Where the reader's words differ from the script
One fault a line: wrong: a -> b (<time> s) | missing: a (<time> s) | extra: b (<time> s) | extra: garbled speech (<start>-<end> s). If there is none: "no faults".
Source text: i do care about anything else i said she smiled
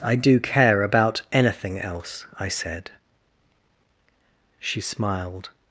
no faults